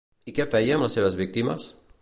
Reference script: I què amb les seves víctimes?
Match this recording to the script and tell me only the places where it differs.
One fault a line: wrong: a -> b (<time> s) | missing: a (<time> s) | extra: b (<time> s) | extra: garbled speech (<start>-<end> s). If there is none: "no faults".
extra: feia (0.5 s)